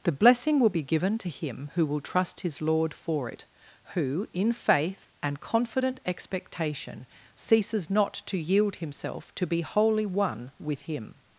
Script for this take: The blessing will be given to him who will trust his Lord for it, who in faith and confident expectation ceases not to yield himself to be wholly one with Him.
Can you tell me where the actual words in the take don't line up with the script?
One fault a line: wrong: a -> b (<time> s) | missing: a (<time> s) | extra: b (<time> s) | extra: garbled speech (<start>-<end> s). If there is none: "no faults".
no faults